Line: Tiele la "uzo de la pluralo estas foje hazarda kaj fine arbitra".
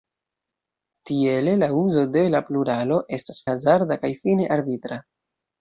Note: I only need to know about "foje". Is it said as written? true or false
false